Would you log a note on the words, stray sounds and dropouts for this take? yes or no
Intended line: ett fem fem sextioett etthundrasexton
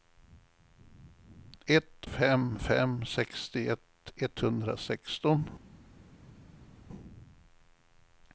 no